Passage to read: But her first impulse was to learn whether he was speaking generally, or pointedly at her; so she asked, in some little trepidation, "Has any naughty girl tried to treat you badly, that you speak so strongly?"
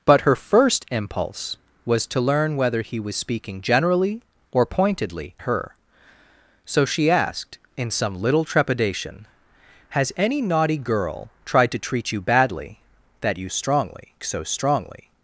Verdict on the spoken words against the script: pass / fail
fail